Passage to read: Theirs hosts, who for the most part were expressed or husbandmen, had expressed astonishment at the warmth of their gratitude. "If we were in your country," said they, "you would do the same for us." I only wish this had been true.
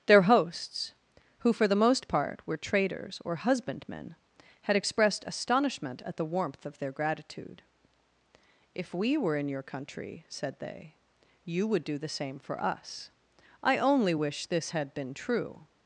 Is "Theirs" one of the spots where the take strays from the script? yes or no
yes